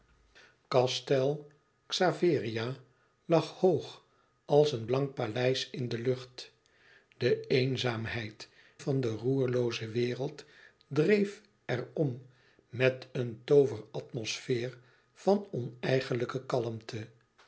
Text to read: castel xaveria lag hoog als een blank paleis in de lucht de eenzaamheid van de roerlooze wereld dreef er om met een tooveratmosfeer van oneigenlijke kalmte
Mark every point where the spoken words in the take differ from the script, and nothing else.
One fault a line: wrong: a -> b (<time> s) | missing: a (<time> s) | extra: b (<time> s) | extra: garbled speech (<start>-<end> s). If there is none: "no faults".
no faults